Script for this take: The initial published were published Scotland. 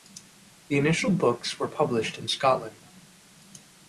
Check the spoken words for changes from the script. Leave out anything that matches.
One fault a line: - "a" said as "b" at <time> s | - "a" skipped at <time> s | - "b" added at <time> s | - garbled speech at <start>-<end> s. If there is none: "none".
- "published" said as "books" at 1.1 s
- "in" added at 2.2 s